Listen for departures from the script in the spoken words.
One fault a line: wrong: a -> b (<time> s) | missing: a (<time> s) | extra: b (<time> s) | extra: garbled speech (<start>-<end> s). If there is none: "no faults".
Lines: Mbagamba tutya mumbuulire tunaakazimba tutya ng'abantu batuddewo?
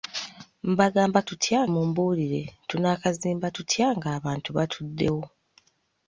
no faults